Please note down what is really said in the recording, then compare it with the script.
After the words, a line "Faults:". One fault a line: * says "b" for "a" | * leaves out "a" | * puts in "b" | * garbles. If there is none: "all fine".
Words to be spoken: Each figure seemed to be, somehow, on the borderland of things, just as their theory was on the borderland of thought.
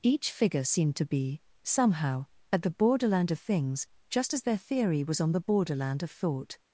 Each figure seemed to be, somehow, at the borderland of things, just as their theory was on the borderland of thought.
Faults:
* says "at" for "on"